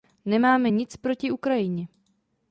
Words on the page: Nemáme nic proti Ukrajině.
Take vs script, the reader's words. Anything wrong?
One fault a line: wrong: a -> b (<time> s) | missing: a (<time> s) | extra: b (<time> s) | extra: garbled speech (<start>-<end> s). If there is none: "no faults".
no faults